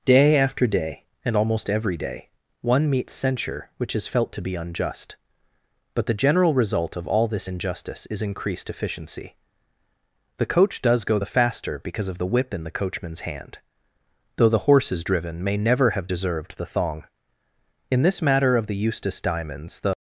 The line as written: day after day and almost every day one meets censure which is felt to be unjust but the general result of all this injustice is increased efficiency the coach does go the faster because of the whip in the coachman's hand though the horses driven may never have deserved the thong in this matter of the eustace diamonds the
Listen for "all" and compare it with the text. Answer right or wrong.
right